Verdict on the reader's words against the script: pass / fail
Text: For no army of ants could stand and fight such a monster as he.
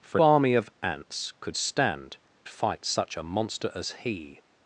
fail